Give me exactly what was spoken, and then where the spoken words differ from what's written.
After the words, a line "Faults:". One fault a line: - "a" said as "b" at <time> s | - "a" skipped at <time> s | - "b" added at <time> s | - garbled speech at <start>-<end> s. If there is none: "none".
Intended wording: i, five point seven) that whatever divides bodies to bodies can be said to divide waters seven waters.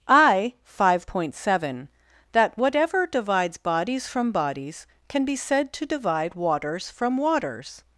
i, five point seven) that whatever divides bodies from bodies can be said to divide waters from waters.
Faults:
- "to" said as "from" at 4.1 s
- "seven" said as "from" at 6.9 s